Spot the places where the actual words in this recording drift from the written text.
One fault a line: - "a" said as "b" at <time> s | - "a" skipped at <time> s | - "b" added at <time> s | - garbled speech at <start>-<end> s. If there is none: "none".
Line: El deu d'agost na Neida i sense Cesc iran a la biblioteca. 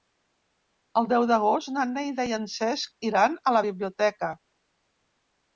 - "sense" said as "en" at 2.4 s